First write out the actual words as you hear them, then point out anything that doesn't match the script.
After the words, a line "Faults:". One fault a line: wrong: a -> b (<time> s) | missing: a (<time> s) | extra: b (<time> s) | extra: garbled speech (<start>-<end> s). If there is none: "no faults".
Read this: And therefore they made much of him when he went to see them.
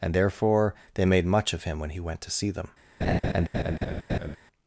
And therefore they made much of him when he went to see them.
Faults:
no faults